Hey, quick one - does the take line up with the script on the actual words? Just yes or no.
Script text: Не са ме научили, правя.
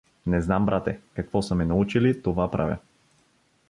no